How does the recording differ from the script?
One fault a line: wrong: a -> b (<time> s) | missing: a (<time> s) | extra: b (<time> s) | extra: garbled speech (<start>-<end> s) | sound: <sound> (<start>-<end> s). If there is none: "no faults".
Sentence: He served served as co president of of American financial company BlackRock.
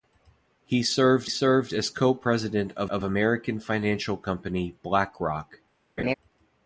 sound: laugh (6.0-6.1 s)